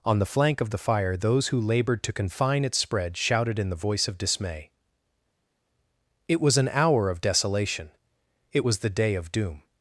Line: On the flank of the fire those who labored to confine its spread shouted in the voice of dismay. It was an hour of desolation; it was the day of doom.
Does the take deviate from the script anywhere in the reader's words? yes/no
no